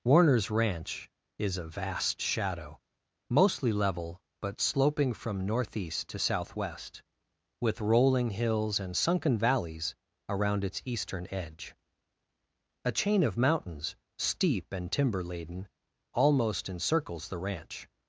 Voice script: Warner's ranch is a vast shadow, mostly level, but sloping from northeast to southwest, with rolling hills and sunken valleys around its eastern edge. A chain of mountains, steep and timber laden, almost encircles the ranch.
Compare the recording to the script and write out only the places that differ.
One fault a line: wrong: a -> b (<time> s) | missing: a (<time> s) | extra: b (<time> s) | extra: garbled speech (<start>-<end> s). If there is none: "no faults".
no faults